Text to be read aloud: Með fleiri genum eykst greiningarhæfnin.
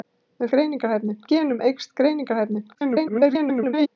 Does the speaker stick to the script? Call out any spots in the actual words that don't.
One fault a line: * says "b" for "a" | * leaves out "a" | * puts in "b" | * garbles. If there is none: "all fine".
* says "greiningarhæfnin" for "fleiri"
* garbles